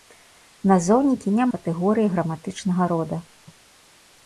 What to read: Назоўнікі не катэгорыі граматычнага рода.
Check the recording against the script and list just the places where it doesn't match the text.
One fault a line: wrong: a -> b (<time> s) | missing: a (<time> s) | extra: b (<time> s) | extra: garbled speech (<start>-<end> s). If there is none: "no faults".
no faults